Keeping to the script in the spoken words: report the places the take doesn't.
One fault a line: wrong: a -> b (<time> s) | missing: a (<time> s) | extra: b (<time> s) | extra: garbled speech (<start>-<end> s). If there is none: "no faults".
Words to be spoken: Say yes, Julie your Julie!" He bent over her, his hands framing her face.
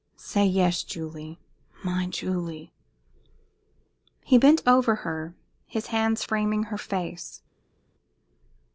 wrong: your -> my (1.8 s)